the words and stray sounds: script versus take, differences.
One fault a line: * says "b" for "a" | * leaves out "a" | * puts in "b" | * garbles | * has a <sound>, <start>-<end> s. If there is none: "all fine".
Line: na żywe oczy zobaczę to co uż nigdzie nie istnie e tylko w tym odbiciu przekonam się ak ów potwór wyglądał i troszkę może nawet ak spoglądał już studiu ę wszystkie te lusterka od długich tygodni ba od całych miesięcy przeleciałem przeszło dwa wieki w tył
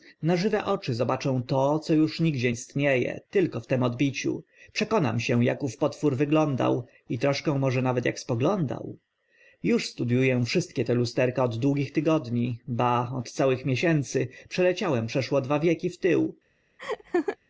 * leaves out "nie"
* has a laugh, 16.8-17.4 s